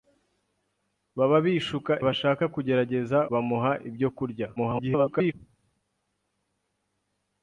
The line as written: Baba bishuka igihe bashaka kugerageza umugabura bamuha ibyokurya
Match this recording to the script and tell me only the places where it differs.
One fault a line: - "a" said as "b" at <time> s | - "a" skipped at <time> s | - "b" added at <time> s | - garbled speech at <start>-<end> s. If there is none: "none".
- "igihe" skipped at 1.9 s
- "umugabura" skipped at 3.2 s
- garbled speech at 4.6-5.3 s